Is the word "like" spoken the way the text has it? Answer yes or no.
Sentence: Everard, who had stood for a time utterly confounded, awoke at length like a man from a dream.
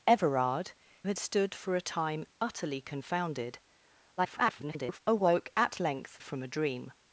no